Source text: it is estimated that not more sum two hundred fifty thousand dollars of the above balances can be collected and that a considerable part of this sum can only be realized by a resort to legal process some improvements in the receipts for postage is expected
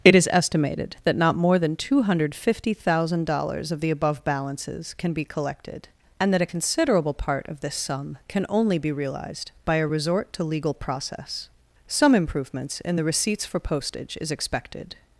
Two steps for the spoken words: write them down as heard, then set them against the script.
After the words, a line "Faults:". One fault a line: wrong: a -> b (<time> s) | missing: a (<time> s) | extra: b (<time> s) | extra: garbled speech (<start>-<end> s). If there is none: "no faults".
it is estimated that not more than two hundred fifty thousand dollars of the above balances can be collected and that a considerable part of this sum can only be realized by a resort to legal process some improvements in the receipts for postage is expected
Faults:
wrong: sum -> than (1.6 s)